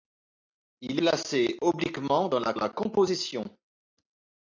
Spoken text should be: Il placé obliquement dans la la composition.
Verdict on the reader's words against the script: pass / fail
pass